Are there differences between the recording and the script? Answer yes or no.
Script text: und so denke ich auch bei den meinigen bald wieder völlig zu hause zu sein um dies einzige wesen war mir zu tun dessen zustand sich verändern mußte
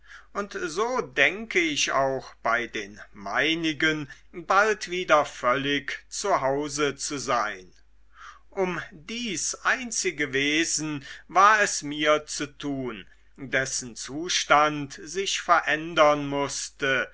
yes